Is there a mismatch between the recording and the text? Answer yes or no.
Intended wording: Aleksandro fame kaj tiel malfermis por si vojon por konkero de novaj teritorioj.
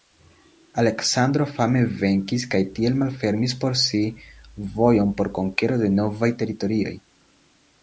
yes